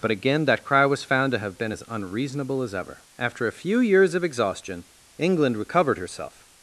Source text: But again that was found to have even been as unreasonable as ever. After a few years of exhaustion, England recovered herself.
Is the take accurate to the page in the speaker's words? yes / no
no